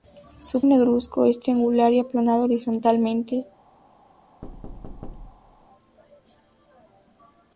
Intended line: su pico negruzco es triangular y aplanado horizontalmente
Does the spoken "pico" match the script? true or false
false